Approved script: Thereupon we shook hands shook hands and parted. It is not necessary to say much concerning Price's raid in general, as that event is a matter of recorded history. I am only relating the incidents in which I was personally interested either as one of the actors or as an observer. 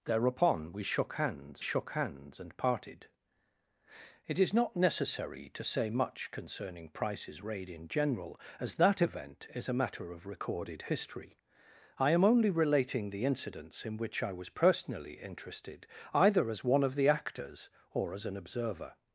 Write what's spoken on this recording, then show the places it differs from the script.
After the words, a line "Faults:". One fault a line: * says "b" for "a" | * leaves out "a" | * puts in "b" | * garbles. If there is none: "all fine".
Thereupon we shook hands shook hands and parted. It is not necessary to say much concerning Price's raid in general, as that event is a matter of recorded history. I am only relating the incidents in which I was personally interested either as one of the actors or as an observer.
Faults:
all fine